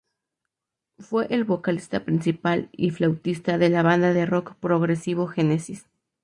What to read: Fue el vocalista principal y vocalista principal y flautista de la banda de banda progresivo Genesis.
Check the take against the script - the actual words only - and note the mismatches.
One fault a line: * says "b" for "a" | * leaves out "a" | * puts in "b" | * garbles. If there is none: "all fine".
* leaves out "vocalista principal y"
* says "rock" for "banda"